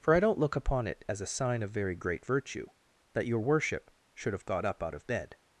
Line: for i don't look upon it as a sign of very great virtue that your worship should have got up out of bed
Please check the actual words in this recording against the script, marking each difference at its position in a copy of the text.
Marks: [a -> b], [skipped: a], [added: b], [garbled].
for i don't look upon it as a sign of very great virtue that your worship should have got up out of bed